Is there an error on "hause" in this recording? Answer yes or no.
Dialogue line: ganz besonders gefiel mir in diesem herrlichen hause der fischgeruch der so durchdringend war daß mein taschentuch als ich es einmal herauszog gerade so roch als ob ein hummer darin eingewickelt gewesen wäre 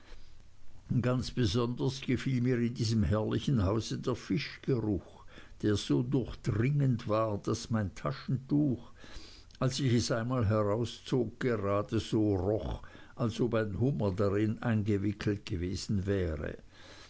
no